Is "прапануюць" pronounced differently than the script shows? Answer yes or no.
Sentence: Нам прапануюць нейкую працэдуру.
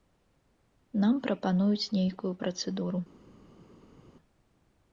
no